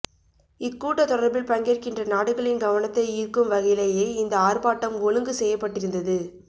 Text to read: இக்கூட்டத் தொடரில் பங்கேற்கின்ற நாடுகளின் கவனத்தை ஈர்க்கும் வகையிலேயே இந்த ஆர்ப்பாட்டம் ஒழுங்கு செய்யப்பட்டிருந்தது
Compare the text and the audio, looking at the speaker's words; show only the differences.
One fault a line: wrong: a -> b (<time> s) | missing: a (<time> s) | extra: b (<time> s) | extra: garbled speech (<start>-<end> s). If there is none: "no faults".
no faults